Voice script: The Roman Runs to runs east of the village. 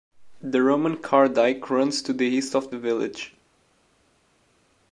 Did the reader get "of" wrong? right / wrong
right